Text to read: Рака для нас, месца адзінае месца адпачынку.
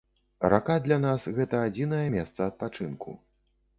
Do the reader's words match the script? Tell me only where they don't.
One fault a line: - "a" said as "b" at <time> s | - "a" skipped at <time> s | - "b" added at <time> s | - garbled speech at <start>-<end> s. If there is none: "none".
- "месца" said as "гэта" at 1.4 s